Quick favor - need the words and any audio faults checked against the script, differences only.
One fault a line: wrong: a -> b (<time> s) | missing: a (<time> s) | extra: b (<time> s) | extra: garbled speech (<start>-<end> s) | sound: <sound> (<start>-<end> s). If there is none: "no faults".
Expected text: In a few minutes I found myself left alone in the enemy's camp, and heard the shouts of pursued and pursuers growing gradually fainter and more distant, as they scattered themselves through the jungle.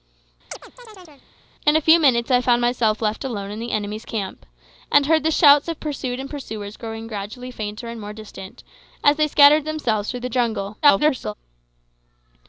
sound: chirp (0.5-1.3 s)
extra: garbled speech (10.8-11.3 s)